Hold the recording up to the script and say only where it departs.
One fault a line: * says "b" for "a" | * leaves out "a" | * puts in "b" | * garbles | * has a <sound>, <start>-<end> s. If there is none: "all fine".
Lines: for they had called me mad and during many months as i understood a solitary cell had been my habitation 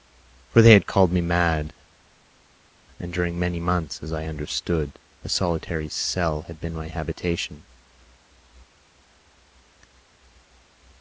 all fine